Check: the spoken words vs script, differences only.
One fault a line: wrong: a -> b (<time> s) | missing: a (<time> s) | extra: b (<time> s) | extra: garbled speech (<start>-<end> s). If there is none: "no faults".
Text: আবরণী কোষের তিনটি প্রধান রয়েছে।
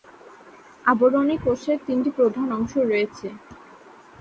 extra: অংশ (2.5 s)